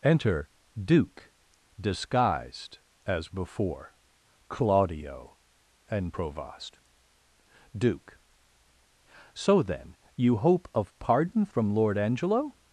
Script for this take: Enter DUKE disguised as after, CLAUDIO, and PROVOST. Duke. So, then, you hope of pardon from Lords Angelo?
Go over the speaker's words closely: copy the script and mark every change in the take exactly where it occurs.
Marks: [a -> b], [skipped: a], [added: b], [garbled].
Enter DUKE disguised as [after, -> before] CLAUDIO, and PROVOST. Duke. So, then, you hope of pardon from [Lords -> Lord] Angelo?